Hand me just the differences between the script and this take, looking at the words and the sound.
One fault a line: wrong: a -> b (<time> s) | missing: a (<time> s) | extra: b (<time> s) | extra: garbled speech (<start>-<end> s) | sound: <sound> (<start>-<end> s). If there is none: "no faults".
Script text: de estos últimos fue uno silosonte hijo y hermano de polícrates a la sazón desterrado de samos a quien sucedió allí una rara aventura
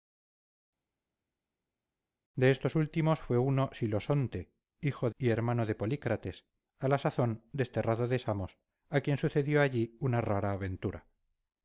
no faults